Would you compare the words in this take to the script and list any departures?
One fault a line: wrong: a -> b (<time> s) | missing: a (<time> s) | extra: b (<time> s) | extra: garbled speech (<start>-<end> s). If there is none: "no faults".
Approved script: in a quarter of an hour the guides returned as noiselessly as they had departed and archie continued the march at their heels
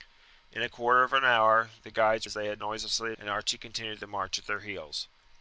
missing: returned (2.3 s)
missing: noiselessly as (2.3 s)
wrong: departed -> noiselessly (2.6 s)